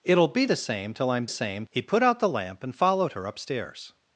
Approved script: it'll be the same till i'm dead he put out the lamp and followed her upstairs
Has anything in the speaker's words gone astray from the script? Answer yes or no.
yes